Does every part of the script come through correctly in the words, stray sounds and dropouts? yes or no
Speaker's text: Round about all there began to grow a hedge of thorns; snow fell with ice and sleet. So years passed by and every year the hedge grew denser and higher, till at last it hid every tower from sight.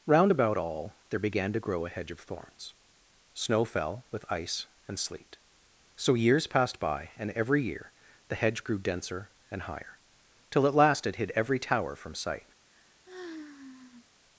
no